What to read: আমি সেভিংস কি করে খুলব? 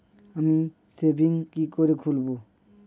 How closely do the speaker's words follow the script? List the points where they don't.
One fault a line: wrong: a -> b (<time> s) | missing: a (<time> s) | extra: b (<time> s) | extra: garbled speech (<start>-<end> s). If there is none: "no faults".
no faults